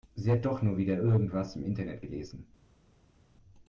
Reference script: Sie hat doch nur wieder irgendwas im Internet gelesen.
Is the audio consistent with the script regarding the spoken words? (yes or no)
yes